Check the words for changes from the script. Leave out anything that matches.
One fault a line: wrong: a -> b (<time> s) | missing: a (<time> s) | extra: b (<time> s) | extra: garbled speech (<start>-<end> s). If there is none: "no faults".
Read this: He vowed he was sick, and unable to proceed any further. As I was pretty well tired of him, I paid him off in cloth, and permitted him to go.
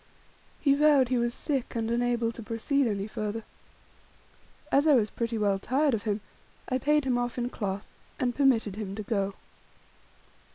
no faults